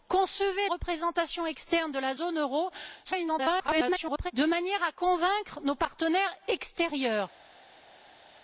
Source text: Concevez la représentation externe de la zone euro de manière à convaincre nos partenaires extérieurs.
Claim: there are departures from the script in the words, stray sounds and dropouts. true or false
true